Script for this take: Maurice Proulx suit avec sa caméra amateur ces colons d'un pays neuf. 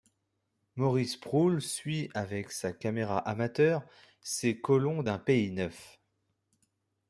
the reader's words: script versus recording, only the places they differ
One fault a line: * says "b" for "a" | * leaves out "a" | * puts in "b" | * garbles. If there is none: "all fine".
all fine